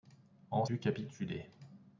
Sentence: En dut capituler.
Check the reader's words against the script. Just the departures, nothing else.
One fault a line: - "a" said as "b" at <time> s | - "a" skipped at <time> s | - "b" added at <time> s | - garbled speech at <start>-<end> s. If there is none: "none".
none